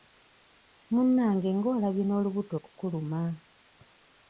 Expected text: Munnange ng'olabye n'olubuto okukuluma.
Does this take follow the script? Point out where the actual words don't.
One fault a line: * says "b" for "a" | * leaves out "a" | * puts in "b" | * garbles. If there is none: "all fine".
all fine